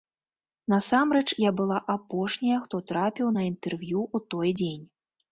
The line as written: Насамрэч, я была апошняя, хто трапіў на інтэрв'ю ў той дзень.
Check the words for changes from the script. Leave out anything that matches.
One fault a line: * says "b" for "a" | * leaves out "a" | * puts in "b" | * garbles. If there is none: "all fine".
all fine